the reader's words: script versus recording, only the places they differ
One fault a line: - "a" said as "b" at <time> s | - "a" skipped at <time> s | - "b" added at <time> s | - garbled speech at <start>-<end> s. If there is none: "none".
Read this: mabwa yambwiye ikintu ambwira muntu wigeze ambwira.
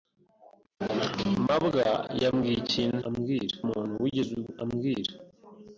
none